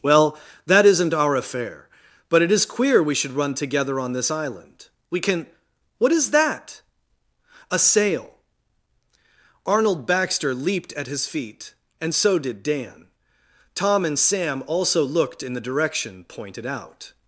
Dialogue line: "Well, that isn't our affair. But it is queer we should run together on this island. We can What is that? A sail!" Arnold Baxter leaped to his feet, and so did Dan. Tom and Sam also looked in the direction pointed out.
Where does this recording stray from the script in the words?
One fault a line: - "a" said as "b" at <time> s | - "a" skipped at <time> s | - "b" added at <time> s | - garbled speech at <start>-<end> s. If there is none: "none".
- "to" said as "at" at 10.9 s